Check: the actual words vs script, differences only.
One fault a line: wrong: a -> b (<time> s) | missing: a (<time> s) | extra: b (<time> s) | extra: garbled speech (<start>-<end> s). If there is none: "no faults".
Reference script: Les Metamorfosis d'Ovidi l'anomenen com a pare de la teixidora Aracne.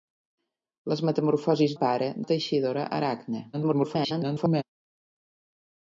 missing: d'Ovidi l'anomenen com (1.8 s)
missing: de (2.1 s)
extra: garbled speech (3.5-4.6 s)